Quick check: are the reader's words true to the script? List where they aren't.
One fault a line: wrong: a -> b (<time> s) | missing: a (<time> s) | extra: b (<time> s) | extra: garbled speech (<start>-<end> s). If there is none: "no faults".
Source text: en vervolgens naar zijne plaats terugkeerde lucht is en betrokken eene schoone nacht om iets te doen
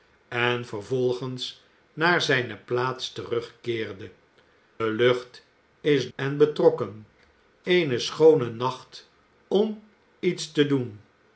no faults